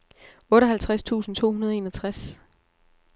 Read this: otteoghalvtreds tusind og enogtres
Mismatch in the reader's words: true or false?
true